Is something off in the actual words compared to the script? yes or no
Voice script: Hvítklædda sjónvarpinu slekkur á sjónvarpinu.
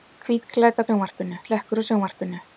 no